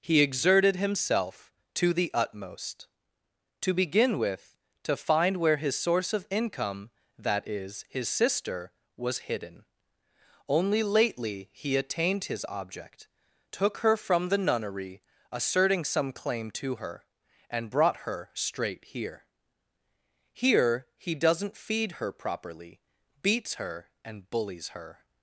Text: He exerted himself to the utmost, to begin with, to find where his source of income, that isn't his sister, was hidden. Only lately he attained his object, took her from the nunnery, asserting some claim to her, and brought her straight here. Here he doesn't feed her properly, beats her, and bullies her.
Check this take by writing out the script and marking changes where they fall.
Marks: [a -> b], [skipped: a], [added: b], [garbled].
He exerted himself to the utmost, to begin with, to find where his source of income, that [isn't -> is] his sister, was hidden. Only lately he attained his object, took her from the nunnery, asserting some claim to her, and brought her straight here. Here he doesn't feed her properly, beats her, and bullies her.